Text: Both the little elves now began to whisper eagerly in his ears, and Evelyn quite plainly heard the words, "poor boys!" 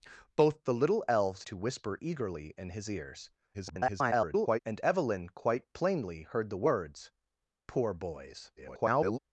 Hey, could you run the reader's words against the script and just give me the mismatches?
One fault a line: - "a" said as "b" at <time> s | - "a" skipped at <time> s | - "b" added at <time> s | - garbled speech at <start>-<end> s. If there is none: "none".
- "now began" skipped at 1.4 s
- garbled speech at 3.5-4.6 s
- garbled speech at 8.6-9.2 s